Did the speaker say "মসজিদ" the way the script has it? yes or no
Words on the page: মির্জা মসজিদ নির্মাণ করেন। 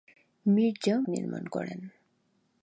no